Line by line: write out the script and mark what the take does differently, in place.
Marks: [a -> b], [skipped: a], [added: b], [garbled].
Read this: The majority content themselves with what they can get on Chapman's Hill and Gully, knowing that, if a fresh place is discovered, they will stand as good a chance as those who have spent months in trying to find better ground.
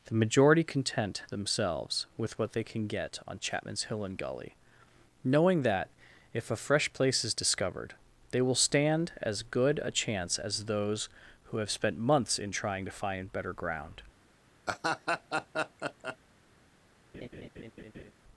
The majority content themselves with what they can get on Chapman's Hill and Gully, knowing that, if a fresh place is discovered, they will stand as good a chance as those who have spent months in trying to find better ground.